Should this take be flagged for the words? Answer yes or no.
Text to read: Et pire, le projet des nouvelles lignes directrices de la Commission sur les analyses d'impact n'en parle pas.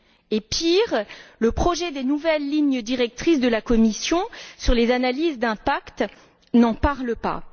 no